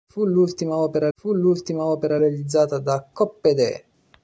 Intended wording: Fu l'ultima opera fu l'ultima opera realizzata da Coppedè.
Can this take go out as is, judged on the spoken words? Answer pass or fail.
pass